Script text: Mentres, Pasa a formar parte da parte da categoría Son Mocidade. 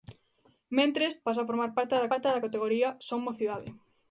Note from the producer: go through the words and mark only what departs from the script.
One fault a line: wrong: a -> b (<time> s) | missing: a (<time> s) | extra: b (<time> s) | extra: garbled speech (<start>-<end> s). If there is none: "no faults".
no faults